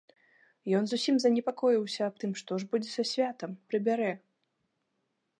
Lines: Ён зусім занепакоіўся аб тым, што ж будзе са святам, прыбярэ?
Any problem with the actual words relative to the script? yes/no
no